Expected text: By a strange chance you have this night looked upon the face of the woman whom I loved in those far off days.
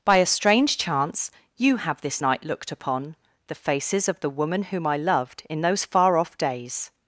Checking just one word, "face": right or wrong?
wrong